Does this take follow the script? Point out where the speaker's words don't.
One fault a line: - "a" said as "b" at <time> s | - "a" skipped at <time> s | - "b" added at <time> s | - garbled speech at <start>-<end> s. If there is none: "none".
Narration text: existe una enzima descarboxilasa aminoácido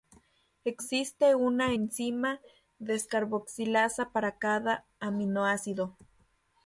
- "para cada" added at 4.1 s